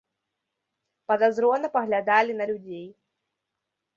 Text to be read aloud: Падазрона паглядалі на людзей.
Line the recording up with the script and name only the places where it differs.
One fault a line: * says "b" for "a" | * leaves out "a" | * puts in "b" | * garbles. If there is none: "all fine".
all fine